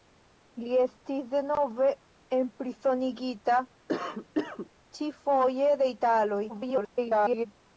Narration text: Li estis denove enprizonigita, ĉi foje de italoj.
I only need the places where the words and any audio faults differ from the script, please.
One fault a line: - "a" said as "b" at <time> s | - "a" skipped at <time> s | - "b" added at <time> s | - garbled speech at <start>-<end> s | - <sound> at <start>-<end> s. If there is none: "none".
- cough at 3.9-4.7 s
- garbled speech at 6.5-7.5 s